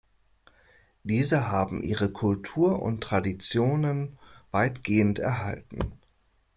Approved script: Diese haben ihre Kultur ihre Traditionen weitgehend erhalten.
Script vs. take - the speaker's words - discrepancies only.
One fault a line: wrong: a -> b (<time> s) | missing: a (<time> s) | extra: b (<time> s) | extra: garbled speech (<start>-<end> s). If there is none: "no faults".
wrong: ihre -> und (2.8 s)